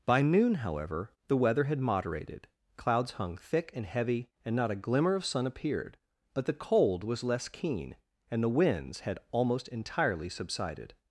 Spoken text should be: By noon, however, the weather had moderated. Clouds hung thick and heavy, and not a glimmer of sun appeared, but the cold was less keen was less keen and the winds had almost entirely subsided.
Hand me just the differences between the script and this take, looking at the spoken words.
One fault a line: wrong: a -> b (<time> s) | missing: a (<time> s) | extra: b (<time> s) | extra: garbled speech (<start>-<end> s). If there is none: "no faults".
missing: was less keen (8.0 s)